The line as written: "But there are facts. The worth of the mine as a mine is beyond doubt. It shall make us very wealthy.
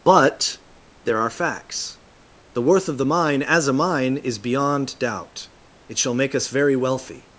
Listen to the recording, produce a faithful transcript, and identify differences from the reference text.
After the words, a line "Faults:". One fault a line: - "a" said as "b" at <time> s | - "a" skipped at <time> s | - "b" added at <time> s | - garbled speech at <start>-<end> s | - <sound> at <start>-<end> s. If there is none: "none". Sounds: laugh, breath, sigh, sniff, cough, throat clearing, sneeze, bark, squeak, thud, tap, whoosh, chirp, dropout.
"But there are facts. The worth of the mine as a mine is beyond doubt. It shall make us very wealthy.
Faults:
none